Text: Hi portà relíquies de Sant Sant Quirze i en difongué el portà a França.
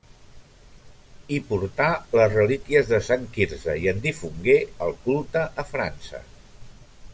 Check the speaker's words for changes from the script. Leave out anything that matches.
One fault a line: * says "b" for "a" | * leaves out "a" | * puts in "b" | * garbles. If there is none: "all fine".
* puts in "les"
* leaves out "Sant"
* says "culte" for "portà"